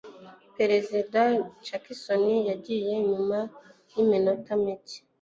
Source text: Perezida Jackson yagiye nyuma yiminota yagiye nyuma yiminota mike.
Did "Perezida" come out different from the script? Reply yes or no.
no